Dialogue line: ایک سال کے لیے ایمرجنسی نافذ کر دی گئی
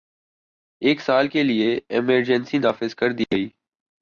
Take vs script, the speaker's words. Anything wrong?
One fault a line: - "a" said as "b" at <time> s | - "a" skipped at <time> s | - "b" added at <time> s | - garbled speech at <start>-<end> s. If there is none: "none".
none